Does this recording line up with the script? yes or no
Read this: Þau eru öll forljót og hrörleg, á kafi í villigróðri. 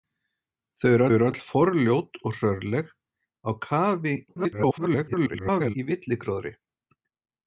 no